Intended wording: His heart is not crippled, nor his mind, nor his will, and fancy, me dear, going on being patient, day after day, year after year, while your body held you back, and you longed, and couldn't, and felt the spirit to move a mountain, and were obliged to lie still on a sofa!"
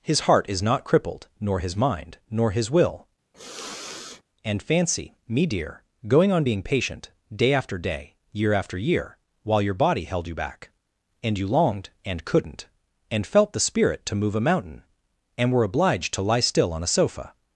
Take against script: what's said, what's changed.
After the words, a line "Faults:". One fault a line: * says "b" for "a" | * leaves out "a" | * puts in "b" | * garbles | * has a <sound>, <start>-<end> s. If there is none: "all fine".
His heart is not crippled, nor his mind, nor his will, and fancy, me dear, going on being patient, day after day, year after year, while your body held you back, and you longed, and couldn't, and felt the spirit to move a mountain, and were obliged to lie still on a sofa!"
Faults:
* has a sniff, 3.3-4.2 s